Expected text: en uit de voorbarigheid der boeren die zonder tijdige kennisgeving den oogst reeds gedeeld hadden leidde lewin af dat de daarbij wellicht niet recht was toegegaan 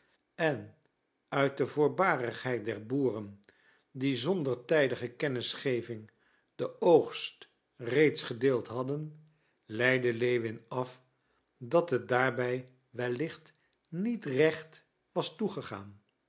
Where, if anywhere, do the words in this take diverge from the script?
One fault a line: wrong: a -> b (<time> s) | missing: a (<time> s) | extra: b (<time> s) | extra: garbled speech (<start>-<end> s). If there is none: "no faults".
wrong: de -> het (11.9 s)